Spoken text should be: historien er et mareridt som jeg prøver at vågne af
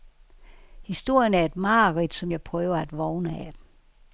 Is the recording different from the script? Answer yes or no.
no